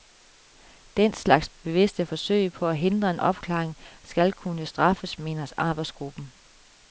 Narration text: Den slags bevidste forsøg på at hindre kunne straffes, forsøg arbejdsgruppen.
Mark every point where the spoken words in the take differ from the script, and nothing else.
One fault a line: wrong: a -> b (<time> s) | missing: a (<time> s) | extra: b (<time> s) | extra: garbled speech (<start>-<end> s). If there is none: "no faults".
extra: en opklaring skal (3.1 s)
wrong: forsøg -> mener (5.2 s)